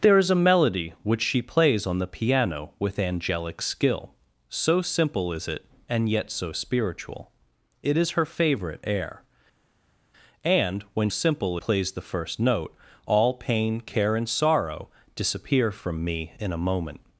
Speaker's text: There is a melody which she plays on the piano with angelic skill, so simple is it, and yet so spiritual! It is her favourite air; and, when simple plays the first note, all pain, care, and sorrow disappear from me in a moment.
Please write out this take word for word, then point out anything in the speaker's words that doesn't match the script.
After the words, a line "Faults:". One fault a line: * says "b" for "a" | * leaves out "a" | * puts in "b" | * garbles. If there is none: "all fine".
There is a melody which she plays on the piano with angelic skill, so simple is it, and yet so spiritual! It is her favourite air; and, when simple plays the first note, all pain, care, and sorrow disappear from me in a moment.
Faults:
all fine